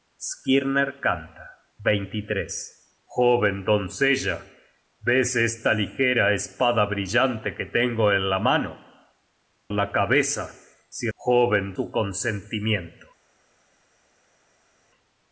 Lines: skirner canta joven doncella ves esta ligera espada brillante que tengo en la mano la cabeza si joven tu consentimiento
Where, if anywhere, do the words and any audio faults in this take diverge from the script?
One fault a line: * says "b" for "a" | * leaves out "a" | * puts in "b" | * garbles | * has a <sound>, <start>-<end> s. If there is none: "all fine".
all fine